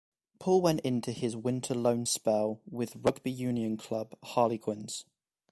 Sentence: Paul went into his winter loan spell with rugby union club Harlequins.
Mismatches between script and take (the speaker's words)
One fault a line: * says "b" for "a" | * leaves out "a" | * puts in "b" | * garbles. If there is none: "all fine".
all fine